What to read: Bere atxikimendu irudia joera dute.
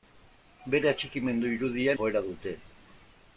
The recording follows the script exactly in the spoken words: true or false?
true